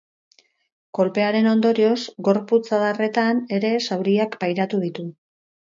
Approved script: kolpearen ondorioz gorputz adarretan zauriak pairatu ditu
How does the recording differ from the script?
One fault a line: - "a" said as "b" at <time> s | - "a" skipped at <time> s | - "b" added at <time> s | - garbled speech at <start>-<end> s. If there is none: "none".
- "ere" added at 3.6 s